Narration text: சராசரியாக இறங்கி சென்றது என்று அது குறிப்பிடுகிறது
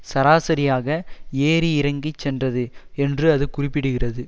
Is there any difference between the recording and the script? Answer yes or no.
yes